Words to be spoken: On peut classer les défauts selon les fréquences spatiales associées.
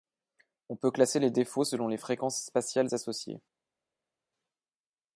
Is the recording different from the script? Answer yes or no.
no